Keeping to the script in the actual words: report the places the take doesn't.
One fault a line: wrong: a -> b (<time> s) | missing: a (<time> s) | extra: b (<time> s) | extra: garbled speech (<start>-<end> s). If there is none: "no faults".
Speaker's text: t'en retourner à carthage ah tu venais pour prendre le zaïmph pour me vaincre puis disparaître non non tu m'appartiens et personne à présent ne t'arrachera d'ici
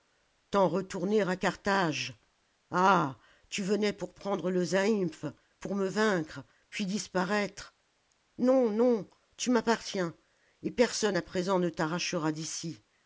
no faults